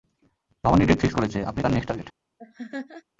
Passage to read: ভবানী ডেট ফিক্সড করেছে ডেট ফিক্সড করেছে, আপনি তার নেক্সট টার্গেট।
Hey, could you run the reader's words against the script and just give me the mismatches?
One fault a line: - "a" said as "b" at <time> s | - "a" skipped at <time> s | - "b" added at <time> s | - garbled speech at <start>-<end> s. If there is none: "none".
- "ডেট ফিক্সড করেছে" skipped at 1.4 s